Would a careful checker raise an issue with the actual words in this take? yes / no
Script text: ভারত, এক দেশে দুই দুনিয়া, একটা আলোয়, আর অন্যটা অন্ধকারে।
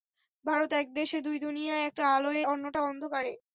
yes